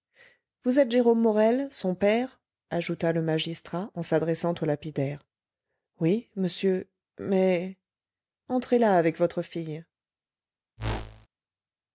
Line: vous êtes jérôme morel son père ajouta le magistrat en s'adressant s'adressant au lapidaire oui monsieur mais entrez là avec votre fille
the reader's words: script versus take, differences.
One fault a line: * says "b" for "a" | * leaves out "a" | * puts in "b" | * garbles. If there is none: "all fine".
* leaves out "s'adressant"